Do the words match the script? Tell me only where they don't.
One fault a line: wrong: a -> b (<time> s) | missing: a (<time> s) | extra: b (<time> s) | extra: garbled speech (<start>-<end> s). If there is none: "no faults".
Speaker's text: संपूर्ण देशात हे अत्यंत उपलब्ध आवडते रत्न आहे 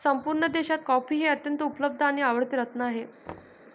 extra: कॉफी (0.8 s)
extra: आणि (2.0 s)